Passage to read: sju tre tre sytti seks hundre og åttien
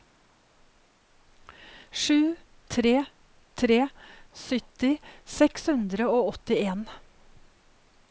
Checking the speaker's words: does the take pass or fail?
pass